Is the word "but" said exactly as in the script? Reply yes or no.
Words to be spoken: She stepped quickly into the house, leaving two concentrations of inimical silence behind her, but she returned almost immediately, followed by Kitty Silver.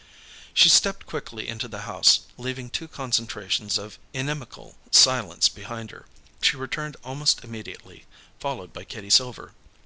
no